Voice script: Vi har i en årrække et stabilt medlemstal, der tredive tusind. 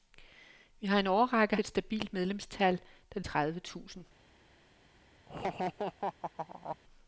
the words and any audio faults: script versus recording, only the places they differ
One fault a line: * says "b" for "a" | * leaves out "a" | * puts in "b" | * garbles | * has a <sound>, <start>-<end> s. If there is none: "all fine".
* has a laugh, 5.3-6.8 s